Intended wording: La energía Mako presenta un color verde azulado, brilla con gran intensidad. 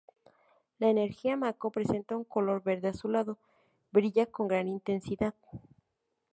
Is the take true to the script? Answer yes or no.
yes